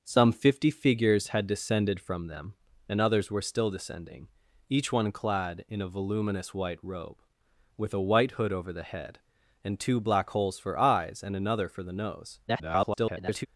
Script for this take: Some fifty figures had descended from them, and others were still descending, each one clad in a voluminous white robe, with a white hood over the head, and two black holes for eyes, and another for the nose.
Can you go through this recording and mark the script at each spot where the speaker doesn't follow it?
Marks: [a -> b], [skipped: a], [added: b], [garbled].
Some fifty figures had descended from them, and others were still descending, each one clad in a voluminous white robe, with a white hood over the head, and two black holes for eyes, and another for the nose. [garbled]